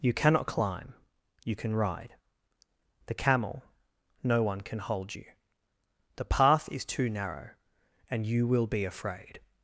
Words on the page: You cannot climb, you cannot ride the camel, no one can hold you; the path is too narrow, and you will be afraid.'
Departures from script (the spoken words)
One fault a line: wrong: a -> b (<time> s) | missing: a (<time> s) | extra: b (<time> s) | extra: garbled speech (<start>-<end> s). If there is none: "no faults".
wrong: cannot -> can (1.6 s)